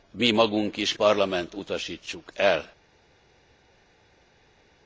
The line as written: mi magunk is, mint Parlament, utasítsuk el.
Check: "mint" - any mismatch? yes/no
yes